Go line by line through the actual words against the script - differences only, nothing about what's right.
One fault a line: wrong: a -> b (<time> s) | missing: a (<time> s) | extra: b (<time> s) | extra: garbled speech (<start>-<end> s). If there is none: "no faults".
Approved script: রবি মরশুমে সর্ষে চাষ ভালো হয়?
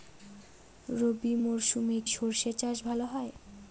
no faults